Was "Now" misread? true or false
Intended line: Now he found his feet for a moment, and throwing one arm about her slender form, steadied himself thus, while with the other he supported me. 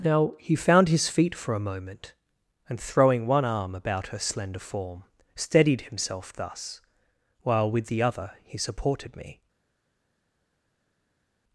false